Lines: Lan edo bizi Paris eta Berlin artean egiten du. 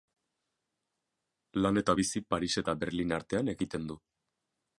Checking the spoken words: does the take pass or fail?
fail